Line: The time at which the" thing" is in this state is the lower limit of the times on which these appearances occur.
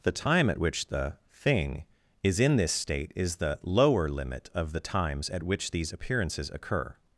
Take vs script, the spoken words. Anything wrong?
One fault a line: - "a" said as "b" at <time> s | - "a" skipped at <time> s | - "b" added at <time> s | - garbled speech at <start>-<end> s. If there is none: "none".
- "on" said as "at" at 5.3 s